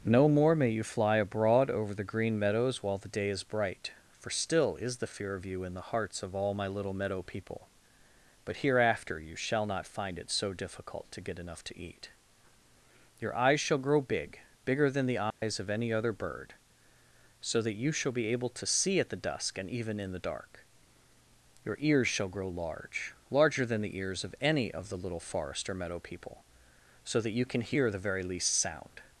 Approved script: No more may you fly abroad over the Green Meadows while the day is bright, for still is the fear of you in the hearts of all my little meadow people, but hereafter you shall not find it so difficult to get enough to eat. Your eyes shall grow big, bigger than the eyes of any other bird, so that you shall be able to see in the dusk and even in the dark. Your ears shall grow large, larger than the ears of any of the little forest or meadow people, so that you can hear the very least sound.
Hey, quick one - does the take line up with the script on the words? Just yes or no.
no